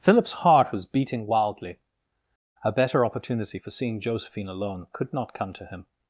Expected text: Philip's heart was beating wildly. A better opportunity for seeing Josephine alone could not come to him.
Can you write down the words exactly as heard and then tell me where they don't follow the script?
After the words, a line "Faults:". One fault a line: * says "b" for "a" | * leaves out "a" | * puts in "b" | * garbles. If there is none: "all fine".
Philip's heart was beating wildly. A better opportunity for seeing Josephine alone could not come to him.
Faults:
all fine